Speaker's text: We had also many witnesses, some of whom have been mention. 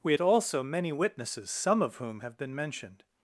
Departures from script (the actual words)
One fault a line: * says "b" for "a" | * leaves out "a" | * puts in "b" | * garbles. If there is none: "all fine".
* says "mentioned" for "mention"